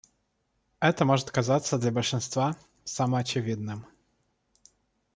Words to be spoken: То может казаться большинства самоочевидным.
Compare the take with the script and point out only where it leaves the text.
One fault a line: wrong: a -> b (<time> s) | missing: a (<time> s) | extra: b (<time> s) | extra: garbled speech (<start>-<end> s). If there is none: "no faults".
wrong: То -> Это (0.8 s)
extra: для (1.8 s)